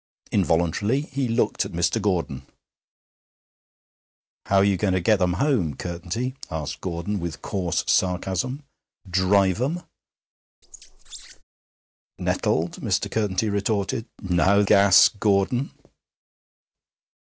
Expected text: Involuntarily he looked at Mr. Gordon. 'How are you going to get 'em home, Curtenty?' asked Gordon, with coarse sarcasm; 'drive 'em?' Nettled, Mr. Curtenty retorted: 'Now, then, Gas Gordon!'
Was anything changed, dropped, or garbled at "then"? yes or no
yes